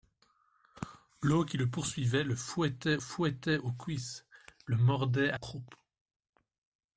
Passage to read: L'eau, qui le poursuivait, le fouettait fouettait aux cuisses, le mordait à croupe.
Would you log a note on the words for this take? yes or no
no